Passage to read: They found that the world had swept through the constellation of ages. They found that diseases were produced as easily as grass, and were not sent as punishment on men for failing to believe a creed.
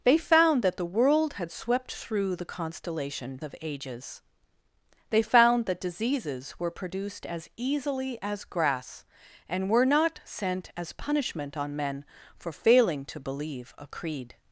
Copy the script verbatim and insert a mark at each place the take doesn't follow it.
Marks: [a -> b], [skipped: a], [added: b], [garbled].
They found that the world had swept through the constellation of ages. They found that diseases were produced as easily as grass, and were not sent as punishment on men for failing to believe a creed.